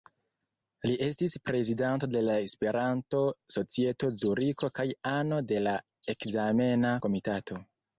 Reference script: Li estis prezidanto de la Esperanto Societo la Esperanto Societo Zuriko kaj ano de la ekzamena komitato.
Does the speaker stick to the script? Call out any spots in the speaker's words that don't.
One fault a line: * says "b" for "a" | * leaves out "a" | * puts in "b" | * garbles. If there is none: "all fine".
* leaves out "la Esperanto Societo"